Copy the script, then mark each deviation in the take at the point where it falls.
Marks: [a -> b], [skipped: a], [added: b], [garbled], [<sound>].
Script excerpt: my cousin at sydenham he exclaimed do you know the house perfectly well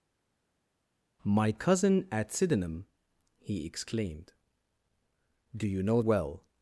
my cousin at sydenham he exclaimed do you know [skipped: the house perfectly] well